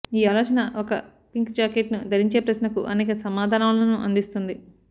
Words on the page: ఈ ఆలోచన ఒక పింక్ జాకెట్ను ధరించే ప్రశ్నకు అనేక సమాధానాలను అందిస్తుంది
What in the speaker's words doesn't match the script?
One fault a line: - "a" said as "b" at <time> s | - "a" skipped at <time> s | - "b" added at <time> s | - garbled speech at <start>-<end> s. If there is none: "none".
none